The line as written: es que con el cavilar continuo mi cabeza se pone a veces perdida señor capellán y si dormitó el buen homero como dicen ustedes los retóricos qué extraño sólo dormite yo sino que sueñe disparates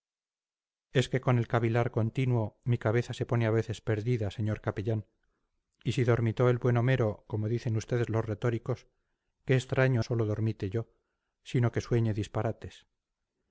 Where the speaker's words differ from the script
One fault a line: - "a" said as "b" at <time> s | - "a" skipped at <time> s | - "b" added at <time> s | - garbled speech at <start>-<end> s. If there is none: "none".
none